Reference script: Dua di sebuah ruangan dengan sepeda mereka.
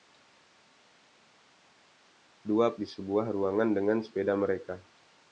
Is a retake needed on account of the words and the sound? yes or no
no